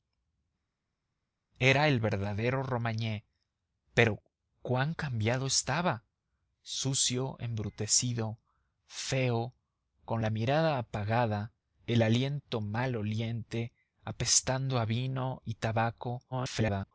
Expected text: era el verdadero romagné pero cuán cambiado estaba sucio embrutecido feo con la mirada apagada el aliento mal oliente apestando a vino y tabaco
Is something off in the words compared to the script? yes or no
yes